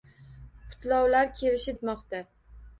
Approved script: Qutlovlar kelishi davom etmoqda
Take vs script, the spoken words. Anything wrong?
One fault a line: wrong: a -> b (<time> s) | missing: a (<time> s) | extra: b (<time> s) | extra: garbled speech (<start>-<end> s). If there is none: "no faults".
missing: davom (1.8 s)